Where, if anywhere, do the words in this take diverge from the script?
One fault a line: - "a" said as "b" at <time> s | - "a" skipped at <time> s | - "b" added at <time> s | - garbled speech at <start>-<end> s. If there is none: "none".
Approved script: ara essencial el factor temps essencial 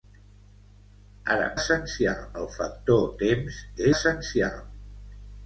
none